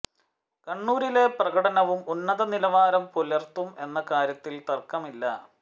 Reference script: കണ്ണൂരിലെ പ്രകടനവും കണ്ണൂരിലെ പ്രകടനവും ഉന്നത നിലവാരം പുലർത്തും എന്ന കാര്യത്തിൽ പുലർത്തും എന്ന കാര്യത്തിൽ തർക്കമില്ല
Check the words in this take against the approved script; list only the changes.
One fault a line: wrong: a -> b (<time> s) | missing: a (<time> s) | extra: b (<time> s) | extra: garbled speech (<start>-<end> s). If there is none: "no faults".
missing: കണ്ണൂരിലെ പ്രകടനവും (2.0 s)
missing: പുലർത്തും എന്ന കാര്യത്തിൽ (4.6 s)